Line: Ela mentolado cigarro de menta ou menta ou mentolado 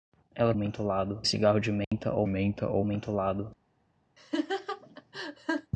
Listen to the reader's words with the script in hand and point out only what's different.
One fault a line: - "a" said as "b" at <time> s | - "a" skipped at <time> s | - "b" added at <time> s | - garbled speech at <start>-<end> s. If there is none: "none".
none